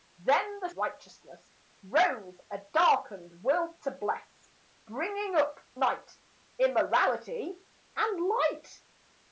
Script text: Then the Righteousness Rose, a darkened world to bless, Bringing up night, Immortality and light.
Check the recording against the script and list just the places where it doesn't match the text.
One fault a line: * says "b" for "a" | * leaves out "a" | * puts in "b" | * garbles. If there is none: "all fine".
all fine